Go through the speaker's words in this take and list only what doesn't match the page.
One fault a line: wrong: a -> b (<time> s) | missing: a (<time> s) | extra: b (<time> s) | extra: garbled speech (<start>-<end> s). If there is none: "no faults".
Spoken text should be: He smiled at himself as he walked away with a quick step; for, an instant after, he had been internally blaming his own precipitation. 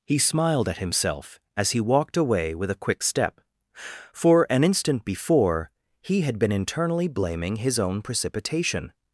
wrong: after -> before (5.0 s)